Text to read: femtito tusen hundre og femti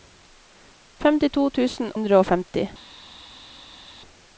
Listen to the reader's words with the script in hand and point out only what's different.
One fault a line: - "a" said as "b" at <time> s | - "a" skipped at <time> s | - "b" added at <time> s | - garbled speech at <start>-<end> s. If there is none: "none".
none